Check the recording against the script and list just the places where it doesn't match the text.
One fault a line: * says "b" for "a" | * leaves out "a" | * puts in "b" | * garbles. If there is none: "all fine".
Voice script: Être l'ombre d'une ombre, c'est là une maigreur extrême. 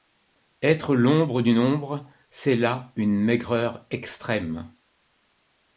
all fine